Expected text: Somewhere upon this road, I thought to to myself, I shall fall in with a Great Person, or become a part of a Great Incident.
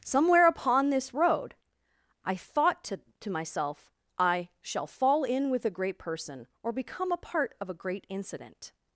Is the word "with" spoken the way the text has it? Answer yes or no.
yes